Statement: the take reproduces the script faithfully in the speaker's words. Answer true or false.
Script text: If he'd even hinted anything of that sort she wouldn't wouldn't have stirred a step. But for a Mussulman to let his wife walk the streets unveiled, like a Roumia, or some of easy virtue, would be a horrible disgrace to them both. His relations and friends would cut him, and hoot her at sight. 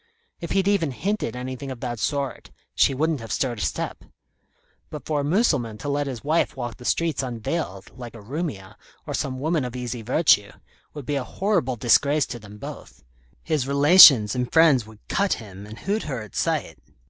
false